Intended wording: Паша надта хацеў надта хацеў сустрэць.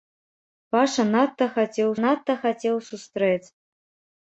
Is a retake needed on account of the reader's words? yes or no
no